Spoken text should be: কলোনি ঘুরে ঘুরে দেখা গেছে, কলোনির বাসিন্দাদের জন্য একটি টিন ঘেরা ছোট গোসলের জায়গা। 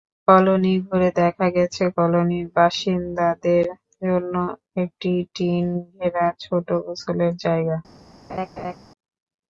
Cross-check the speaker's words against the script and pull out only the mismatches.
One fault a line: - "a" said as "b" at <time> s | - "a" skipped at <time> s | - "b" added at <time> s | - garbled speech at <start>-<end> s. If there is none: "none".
- "ঘুরে" skipped at 1.1 s